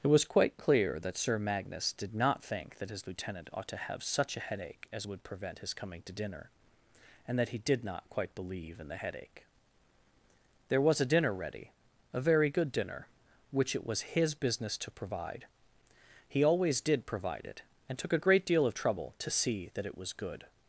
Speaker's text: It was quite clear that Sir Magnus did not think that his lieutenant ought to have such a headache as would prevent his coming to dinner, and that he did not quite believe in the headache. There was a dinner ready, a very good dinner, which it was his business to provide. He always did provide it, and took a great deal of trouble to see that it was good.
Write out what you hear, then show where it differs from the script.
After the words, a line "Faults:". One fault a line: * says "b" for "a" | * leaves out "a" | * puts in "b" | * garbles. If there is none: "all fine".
It was quite clear that Sir Magnus did not think that his lieutenant ought to have such a headache as would prevent his coming to dinner, and that he did not quite believe in the headache. There was a dinner ready, a very good dinner, which it was his business to provide. He always did provide it, and took a great deal of trouble to see that it was good.
Faults:
all fine